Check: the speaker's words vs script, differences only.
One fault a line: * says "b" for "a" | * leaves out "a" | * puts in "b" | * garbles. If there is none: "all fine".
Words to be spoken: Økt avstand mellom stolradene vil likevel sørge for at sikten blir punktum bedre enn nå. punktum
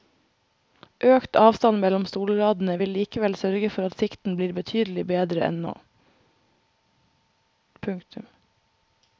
* says "betydelig" for "punktum"